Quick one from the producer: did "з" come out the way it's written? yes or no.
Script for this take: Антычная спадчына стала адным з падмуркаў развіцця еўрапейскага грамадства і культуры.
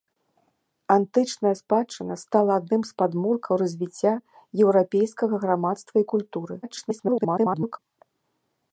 yes